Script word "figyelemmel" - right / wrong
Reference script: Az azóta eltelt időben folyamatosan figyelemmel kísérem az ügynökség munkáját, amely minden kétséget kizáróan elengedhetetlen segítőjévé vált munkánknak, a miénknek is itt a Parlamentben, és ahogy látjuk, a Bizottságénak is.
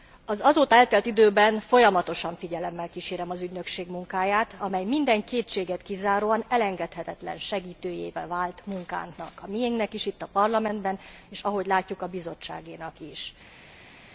right